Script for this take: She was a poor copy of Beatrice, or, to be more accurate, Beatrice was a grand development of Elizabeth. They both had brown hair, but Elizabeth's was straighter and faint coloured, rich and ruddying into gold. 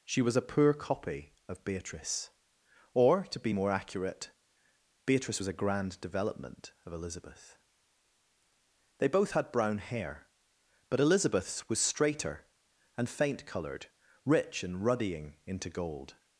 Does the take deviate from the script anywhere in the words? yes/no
no